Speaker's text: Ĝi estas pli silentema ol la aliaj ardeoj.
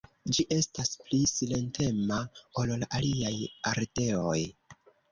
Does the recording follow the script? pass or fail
pass